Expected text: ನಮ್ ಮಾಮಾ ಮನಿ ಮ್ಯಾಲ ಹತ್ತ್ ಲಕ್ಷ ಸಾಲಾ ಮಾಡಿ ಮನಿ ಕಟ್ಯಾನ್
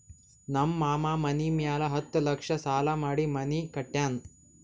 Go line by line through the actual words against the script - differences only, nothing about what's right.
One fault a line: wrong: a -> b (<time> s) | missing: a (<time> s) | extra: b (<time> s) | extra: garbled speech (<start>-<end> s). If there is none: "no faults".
no faults